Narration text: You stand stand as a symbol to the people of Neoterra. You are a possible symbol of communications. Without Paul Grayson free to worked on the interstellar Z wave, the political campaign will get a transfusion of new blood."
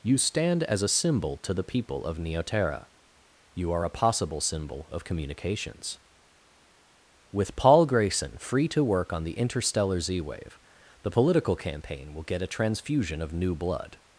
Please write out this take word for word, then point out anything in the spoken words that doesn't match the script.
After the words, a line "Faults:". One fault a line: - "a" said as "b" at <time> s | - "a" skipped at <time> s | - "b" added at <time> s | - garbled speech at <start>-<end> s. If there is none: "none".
You stand as a symbol to the people of Neoterra. You are a possible symbol of communications. With Paul Grayson free to work on the interstellar Z wave, the political campaign will get a transfusion of new blood."
Faults:
- "stand" skipped at 0.6 s
- "Without" said as "With" at 7.3 s
- "worked" said as "work" at 8.8 s